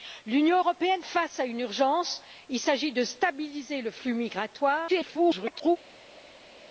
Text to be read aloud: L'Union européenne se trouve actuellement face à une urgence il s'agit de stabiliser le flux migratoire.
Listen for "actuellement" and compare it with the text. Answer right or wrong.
wrong